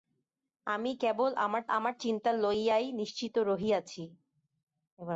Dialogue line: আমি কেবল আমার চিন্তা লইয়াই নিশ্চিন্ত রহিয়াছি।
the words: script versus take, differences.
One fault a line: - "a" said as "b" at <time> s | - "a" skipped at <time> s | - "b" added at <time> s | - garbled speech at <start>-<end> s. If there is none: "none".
- "আমার" added at 1.7 s